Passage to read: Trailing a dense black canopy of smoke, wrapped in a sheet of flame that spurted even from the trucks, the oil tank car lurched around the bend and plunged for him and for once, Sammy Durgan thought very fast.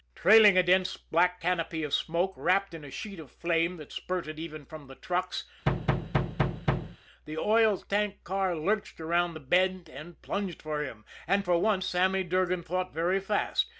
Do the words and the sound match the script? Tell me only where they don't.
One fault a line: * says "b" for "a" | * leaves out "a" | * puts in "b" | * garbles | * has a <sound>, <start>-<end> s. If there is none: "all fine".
* has a thud, 5.7-7.0 s